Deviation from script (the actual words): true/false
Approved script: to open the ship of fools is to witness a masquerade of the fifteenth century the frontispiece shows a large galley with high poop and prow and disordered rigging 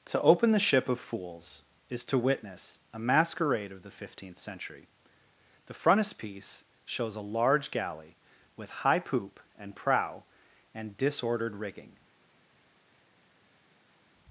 false